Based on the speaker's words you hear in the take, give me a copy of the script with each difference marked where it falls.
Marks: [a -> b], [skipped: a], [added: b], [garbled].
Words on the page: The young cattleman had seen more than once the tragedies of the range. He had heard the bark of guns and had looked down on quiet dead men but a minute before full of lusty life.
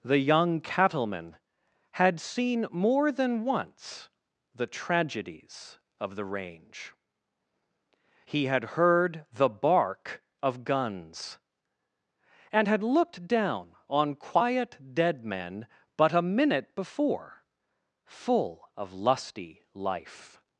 The young cattleman had seen more than once the tragedies of the range. He had heard the bark of guns and had looked down on quiet dead men but a minute before full of lusty life.